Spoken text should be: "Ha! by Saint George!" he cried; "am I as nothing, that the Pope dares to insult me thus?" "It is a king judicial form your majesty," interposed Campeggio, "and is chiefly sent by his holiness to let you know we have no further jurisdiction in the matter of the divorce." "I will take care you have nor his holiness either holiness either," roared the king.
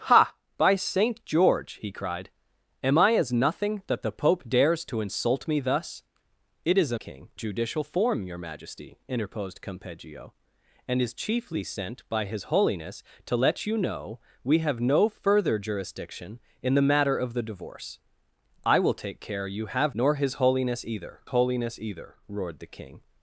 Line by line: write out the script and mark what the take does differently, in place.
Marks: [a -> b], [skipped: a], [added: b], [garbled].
"Ha! by Saint George!" he cried; "am I as nothing, that the Pope dares to insult me thus?" "It is a king judicial form your majesty," interposed Campeggio, "and is chiefly sent by his holiness to let you know we have no further jurisdiction in the matter of the divorce." "I will take care you have nor his holiness either holiness either," roared the king.